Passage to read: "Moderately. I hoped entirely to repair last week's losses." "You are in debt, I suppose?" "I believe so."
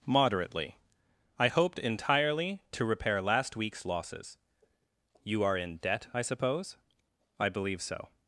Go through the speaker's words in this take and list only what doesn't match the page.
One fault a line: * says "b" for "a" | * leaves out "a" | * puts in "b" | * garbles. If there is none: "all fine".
all fine